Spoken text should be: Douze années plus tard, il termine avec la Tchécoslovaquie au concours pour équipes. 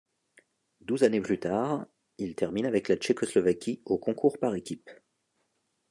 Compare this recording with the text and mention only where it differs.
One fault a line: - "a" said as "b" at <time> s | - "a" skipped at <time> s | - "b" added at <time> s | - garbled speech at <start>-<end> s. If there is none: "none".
- "pour" said as "par" at 4.4 s